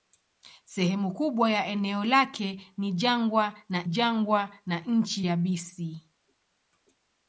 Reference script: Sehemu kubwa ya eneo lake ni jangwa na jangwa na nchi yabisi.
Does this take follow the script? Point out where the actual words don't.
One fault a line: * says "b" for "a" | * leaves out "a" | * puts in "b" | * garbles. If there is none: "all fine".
all fine